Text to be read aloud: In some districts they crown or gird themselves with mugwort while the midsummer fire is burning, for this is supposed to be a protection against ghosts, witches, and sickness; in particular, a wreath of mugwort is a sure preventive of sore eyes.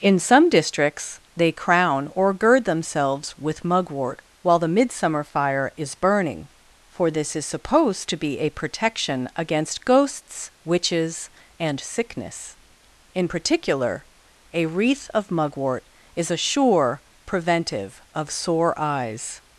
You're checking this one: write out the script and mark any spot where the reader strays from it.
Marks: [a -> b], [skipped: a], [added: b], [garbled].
In some districts they crown or gird themselves with mugwort while the midsummer fire is burning, for this is supposed to be a protection against ghosts, witches, and sickness; in particular, a wreath of mugwort is a sure preventive of sore eyes.